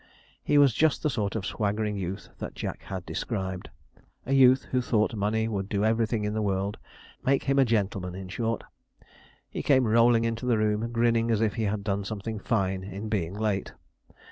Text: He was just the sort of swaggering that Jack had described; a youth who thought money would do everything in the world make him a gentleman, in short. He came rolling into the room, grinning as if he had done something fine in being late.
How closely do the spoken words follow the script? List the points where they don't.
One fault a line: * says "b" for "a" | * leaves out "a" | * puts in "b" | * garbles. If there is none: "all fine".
* puts in "youth"